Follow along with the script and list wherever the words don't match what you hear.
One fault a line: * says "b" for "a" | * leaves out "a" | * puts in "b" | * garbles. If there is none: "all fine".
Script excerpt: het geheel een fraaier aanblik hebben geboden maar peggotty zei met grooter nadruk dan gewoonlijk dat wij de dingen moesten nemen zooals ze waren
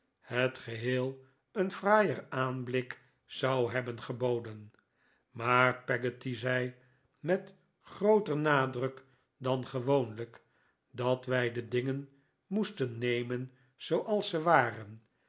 * puts in "zou"